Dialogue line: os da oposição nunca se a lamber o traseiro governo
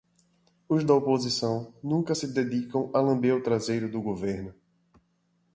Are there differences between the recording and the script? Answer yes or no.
yes